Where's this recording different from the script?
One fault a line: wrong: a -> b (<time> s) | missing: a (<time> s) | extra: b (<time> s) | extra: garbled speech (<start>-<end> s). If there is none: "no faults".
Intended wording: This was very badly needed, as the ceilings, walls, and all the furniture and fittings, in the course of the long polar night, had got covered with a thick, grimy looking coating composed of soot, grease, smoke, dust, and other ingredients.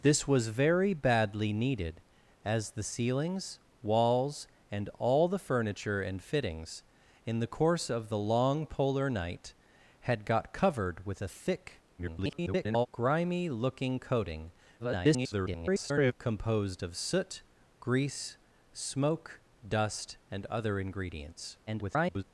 extra: garbled speech (12.0-12.9 s)
extra: garbled speech (14.8-16.1 s)
extra: garbled speech (21.7-22.2 s)